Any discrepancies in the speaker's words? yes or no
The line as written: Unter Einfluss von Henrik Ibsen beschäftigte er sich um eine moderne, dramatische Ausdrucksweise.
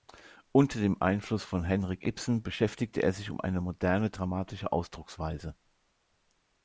yes